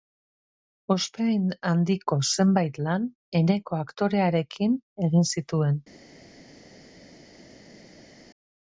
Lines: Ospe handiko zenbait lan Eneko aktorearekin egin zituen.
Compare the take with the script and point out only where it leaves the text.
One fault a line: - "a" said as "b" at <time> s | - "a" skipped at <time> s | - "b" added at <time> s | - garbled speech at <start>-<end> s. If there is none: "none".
none